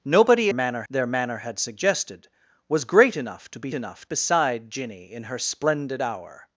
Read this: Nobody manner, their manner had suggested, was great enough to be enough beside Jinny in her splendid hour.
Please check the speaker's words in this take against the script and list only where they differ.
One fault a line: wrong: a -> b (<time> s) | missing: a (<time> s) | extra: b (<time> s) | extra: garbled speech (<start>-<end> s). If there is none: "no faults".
no faults